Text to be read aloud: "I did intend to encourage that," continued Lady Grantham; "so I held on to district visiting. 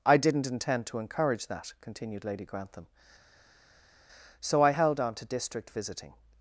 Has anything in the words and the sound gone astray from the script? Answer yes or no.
yes